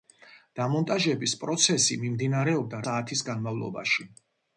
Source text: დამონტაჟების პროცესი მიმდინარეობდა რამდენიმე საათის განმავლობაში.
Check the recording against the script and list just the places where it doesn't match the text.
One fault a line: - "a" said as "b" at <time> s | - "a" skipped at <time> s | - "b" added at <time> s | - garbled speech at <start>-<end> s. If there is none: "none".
- "რამდენიმე" skipped at 2.8 s